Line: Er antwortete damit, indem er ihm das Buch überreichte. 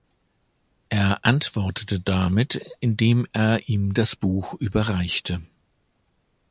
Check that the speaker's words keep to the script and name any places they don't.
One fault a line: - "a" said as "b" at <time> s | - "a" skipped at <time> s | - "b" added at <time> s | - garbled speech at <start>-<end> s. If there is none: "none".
none